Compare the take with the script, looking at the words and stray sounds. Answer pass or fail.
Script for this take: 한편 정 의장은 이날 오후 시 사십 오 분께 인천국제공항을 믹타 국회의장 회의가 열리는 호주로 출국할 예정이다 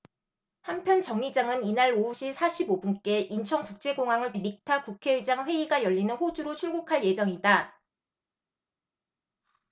pass